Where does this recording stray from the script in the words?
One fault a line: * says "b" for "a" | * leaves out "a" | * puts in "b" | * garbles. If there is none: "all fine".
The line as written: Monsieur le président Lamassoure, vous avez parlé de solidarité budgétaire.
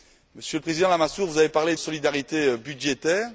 * leaves out "de"